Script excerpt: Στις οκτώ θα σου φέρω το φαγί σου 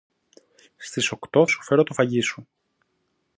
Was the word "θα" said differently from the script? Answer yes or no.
yes